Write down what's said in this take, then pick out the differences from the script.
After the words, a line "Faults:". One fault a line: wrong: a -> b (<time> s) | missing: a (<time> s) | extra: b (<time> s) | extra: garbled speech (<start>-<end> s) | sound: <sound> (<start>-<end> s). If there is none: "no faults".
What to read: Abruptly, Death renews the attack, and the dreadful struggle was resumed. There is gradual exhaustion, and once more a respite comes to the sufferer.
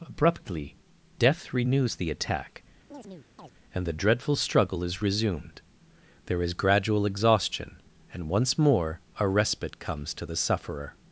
Abruptly, Death renews the attack, and the dreadful struggle is resumed. There is gradual exhaustion, and once more a respite comes to the sufferer.
Faults:
sound: chirp (2.9-3.5 s)
wrong: was -> is (4.8 s)